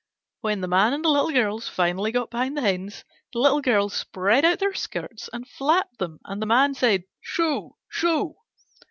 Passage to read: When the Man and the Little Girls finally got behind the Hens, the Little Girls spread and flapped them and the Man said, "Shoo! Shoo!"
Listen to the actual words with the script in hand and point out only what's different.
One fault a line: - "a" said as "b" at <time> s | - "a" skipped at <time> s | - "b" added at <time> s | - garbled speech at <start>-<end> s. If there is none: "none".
- "out their skirts" added at 4.4 s